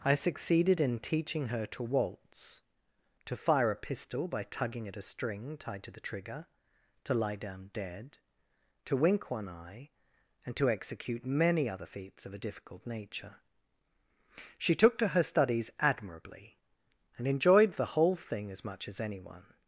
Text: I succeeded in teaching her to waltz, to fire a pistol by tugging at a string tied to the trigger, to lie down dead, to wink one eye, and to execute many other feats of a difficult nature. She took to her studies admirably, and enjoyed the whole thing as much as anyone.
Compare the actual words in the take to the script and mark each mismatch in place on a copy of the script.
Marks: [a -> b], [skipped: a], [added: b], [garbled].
I succeeded in teaching her to waltz, to fire a pistol by tugging at a string tied to the trigger, to lie down dead, to wink one eye, and to execute many other feats of a difficult nature. She took to her studies admirably, and enjoyed the whole thing as much as anyone.